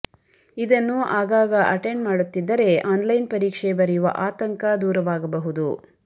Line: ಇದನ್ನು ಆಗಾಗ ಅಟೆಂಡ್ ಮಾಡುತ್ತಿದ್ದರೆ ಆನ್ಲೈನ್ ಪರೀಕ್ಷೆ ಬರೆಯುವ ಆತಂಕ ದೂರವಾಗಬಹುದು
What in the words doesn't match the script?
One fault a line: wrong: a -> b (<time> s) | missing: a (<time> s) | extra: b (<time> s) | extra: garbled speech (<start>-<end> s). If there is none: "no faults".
no faults